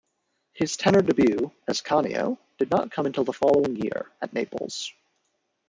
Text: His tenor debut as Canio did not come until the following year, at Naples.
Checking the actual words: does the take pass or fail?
pass